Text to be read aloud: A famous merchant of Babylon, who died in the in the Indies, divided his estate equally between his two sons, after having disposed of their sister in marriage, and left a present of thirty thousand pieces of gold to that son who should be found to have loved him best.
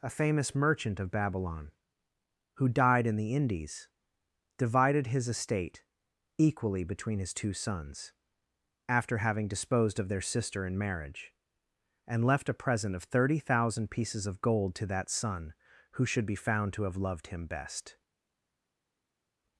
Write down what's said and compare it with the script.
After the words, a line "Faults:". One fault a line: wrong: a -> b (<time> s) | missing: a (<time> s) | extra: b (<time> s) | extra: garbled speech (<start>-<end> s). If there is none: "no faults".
A famous merchant of Babylon, who died in the Indies, divided his estate equally between his two sons, after having disposed of their sister in marriage, and left a present of thirty thousand pieces of gold to that son who should be found to have loved him best.
Faults:
missing: in the (3.4 s)